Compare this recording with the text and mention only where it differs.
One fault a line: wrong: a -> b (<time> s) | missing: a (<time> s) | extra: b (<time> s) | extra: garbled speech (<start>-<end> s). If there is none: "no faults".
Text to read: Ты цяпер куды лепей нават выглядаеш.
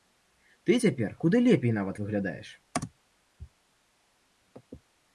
no faults